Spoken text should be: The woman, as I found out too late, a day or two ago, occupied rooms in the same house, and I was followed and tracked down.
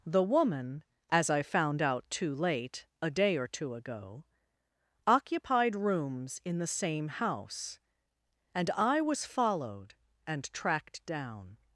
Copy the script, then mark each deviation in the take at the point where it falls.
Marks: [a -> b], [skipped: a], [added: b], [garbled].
The woman, as I found out too late, a day or two ago, occupied rooms in the same house, and I was followed and tracked down.